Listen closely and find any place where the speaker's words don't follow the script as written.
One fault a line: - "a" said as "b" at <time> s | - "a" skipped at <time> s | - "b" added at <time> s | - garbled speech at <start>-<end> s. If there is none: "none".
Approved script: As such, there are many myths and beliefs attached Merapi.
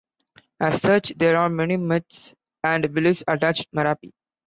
none